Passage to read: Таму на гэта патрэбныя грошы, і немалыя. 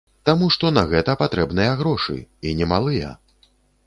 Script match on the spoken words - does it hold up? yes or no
no